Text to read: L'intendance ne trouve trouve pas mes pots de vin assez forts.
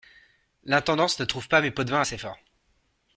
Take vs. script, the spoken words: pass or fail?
fail